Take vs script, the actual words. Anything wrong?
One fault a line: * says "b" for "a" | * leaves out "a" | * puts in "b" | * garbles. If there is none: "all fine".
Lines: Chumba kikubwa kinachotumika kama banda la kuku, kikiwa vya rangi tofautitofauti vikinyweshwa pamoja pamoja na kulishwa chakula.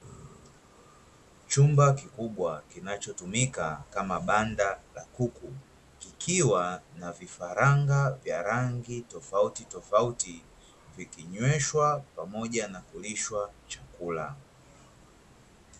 * puts in "na vifaranga"
* leaves out "pamoja"